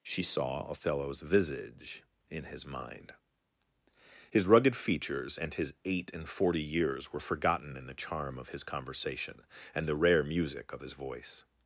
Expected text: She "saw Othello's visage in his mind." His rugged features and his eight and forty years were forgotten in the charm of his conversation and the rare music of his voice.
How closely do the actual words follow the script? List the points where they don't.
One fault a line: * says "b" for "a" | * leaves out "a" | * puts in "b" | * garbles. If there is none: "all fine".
all fine